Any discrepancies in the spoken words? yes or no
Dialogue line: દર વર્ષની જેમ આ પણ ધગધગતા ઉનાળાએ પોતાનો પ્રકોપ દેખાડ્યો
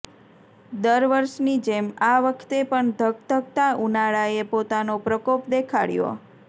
yes